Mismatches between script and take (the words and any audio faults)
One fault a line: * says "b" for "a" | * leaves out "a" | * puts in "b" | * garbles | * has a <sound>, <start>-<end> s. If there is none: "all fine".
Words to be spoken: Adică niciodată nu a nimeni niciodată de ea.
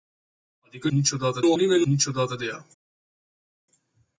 all fine